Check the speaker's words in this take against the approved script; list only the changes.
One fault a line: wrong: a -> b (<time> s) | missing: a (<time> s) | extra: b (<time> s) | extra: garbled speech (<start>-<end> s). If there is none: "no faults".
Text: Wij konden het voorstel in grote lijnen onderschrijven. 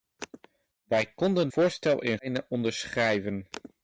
missing: het (1.5 s)
missing: grote (2.2 s)